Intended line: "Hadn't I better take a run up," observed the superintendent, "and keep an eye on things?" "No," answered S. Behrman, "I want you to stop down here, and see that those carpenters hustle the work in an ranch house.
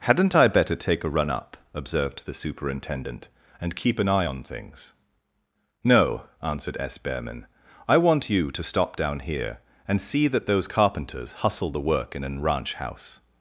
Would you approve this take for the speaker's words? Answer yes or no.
yes